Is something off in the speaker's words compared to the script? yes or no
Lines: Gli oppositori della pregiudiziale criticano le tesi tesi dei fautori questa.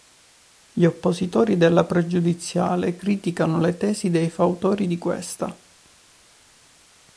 yes